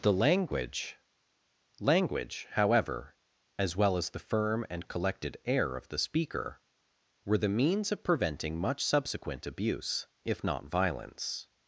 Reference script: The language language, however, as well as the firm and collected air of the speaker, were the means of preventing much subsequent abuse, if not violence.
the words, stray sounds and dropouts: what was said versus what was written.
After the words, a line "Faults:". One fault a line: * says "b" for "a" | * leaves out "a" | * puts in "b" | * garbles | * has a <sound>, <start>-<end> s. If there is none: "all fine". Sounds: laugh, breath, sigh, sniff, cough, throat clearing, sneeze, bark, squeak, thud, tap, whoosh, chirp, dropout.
The language language, however, as well as the firm and collected air of the speaker, were the means of preventing much subsequent abuse, if not violence.
Faults:
all fine